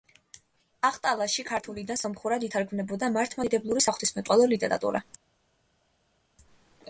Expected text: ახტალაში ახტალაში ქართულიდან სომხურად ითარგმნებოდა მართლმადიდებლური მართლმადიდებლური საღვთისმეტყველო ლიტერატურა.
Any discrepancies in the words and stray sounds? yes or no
yes